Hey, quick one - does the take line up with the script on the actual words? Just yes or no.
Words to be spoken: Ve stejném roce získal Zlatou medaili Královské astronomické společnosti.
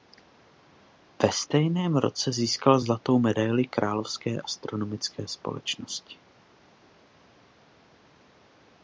yes